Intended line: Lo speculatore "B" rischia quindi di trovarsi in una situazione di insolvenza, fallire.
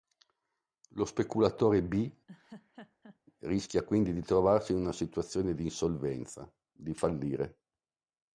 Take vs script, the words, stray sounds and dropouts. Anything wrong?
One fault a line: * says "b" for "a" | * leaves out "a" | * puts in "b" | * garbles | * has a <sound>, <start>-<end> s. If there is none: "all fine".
* has a laugh, 2.3-3.2 s
* puts in "di"